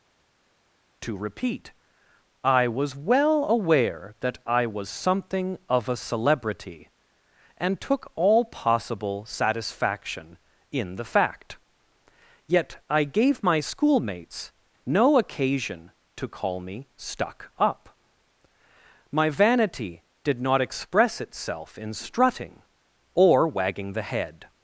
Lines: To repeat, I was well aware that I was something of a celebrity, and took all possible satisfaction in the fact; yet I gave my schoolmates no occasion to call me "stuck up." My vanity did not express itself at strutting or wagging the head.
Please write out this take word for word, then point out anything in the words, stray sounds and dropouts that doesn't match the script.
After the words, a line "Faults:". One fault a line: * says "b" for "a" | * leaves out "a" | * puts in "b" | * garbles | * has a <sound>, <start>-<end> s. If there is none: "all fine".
To repeat, I was well aware that I was something of a celebrity, and took all possible satisfaction in the fact; yet I gave my schoolmates no occasion to call me "stuck up." My vanity did not express itself in strutting or wagging the head.
Faults:
* says "in" for "at"